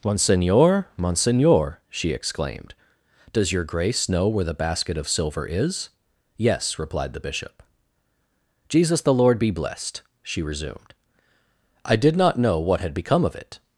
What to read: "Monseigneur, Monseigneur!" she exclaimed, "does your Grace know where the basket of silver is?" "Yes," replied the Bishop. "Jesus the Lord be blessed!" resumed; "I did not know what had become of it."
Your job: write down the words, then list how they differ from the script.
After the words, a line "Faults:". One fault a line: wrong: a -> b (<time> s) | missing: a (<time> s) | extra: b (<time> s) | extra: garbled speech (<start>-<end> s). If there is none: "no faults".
"Monseigneur, Monseigneur!" she exclaimed, "does your Grace know where the basket of silver is?" "Yes," replied the Bishop. "Jesus the Lord be blessed!" she resumed; "I did not know what had become of it."
Faults:
extra: she (10.2 s)